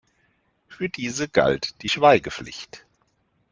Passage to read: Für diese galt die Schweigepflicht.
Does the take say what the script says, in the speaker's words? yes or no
yes